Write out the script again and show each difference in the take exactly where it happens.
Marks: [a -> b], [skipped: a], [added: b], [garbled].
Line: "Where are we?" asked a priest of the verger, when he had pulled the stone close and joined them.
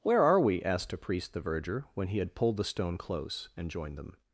"Where are we?" asked a priest [skipped: of] the verger, when he had pulled the stone close and joined them.